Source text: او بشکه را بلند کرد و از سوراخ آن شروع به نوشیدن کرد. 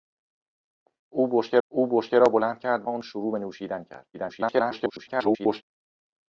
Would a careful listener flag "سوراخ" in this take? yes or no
yes